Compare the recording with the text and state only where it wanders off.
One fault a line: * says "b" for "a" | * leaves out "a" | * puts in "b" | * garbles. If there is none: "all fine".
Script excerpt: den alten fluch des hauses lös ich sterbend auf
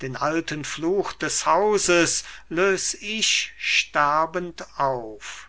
all fine